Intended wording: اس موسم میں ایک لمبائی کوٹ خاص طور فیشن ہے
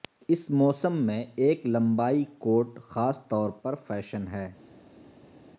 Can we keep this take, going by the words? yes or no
no